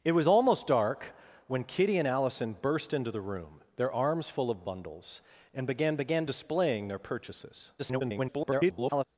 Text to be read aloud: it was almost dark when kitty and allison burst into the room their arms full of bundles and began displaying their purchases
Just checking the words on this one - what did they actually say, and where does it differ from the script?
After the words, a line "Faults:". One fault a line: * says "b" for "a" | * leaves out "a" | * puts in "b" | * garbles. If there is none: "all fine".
it was almost dark when kitty and allison burst into the room their arms full of bundles and began began displaying their purchases [garbled]
Faults:
* puts in "began"
* garbles